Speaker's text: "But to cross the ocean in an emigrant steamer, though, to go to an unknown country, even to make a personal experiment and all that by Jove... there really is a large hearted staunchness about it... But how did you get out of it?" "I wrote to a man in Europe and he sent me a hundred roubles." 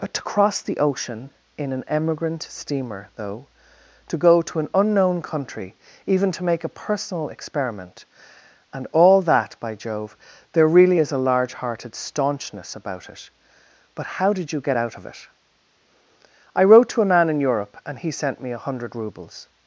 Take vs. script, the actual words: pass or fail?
pass